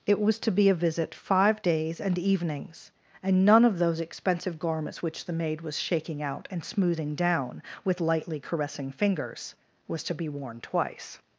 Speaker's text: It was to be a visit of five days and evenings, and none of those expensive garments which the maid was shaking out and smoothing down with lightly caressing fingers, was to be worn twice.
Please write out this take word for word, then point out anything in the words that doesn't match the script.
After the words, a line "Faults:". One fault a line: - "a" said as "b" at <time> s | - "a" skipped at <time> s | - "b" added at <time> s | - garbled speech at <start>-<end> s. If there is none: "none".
It was to be a visit five days and evenings, and none of those expensive garments which the maid was shaking out and smoothing down with lightly caressing fingers, was to be worn twice.
Faults:
- "of" skipped at 1.1 s